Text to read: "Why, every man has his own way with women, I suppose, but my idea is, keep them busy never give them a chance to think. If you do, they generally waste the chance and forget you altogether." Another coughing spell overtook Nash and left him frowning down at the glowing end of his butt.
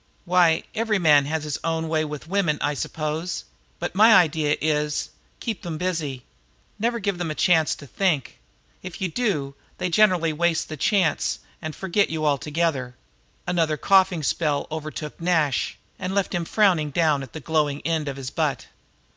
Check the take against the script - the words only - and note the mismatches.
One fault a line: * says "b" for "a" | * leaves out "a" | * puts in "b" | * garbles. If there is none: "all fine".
all fine